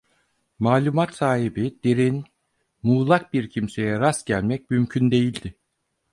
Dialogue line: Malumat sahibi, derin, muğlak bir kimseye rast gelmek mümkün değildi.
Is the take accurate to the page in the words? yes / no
yes